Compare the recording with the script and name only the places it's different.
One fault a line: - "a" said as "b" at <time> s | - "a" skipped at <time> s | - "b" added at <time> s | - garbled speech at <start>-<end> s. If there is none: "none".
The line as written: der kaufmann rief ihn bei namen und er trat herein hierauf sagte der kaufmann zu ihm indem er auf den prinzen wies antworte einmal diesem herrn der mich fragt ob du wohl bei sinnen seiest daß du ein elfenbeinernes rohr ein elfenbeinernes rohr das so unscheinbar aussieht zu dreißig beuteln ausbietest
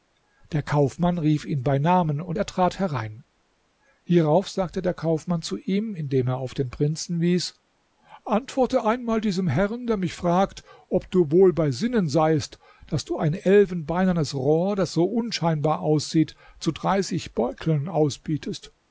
- "ein elfenbeinernes rohr" skipped at 14.8 s